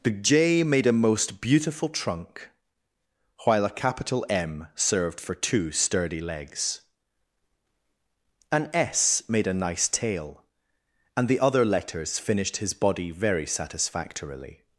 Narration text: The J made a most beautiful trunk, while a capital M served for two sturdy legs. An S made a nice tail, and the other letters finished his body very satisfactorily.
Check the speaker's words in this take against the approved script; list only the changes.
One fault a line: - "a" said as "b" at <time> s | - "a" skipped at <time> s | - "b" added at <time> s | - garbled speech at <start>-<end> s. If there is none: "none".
none